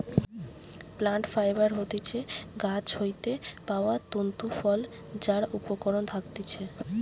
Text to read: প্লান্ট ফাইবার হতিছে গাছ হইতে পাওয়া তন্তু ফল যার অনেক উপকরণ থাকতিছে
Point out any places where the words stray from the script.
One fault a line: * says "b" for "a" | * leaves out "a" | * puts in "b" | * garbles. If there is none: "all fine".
* leaves out "অনেক"